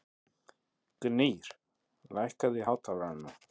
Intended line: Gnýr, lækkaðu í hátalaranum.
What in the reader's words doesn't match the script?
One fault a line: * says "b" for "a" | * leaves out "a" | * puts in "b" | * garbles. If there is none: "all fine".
all fine